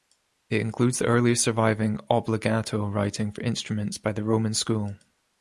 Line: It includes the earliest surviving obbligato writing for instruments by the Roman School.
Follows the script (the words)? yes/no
yes